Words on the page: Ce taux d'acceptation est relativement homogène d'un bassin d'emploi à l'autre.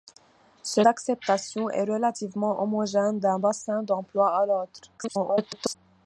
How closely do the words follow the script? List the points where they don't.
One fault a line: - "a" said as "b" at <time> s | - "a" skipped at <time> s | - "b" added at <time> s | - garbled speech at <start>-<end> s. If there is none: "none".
- "taux" skipped at 0.8 s
- garbled speech at 5.0-5.8 s